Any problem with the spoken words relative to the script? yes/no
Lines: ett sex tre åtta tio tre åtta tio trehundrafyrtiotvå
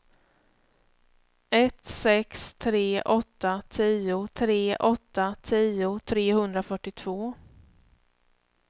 no